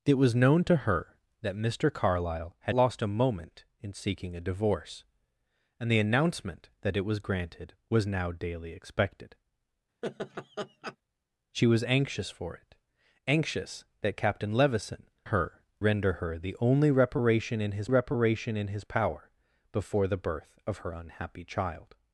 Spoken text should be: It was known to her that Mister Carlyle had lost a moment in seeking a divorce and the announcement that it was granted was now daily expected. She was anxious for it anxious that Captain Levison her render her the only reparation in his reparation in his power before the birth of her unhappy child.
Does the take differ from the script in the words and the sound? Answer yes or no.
yes